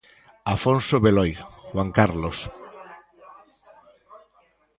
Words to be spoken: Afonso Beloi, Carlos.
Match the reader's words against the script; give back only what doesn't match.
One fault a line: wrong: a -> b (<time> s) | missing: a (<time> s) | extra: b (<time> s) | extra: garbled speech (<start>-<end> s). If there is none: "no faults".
extra: Juan (1.7 s)